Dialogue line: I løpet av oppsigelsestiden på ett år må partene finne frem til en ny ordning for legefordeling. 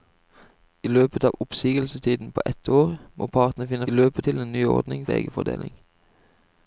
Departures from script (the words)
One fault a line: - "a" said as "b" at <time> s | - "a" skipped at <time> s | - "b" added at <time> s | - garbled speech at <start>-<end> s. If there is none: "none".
- "frem" said as "løpet" at 3.9 s
- "for" skipped at 5.1 s